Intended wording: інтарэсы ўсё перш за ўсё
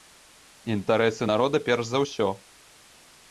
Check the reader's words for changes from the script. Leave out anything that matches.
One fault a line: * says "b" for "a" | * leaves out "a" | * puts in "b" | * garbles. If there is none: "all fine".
* says "народа" for "ўсё"